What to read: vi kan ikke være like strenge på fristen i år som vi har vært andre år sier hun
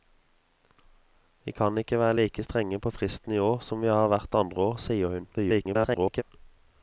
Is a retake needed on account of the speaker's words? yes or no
yes